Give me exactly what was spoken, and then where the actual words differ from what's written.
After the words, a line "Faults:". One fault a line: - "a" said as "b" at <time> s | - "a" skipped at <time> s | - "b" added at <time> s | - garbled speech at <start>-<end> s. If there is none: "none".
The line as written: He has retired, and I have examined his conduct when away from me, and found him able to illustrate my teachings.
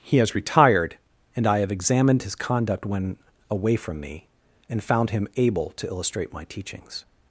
He has retired, and I have examined his conduct when away from me, and found him able to illustrate my teachings.
Faults:
none